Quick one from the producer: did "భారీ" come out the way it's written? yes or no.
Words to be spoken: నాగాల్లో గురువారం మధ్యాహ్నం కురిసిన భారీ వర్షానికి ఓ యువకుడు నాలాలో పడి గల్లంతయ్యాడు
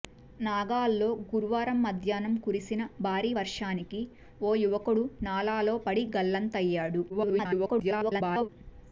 yes